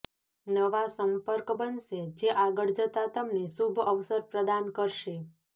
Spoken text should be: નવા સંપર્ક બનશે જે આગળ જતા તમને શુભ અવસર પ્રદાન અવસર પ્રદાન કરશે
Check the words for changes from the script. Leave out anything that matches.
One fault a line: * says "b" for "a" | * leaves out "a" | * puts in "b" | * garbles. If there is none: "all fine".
* leaves out "અવસર પ્રદાન"